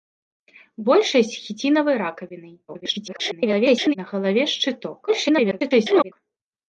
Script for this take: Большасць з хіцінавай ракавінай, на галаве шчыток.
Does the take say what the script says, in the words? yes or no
no